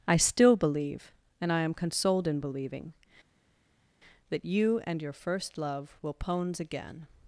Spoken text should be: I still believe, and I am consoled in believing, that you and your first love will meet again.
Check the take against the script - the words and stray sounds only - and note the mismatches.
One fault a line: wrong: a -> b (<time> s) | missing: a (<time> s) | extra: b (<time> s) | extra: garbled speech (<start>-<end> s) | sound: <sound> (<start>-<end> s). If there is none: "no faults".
wrong: meet -> pones (6.1 s)